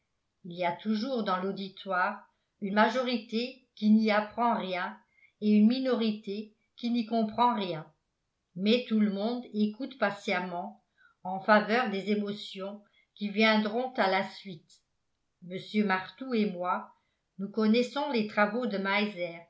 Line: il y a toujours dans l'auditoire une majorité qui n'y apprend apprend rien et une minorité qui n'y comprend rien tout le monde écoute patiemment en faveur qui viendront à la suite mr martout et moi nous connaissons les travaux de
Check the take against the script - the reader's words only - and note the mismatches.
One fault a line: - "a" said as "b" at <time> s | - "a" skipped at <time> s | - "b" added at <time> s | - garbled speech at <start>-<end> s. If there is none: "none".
- "apprend" skipped at 4.6 s
- "mais" added at 8.5 s
- "des émotions" added at 11.9 s